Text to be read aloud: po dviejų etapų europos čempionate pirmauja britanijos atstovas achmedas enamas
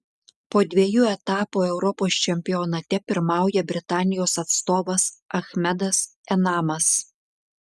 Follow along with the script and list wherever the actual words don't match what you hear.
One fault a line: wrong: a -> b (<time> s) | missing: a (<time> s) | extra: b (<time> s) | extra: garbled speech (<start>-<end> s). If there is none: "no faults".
no faults